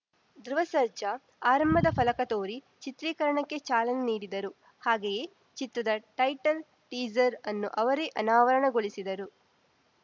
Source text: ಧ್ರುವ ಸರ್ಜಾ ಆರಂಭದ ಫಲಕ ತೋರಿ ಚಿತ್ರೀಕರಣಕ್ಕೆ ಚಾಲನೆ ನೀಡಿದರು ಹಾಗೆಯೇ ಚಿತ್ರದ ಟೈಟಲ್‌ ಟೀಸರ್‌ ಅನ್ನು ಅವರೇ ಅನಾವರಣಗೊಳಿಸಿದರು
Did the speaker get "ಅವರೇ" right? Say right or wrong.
right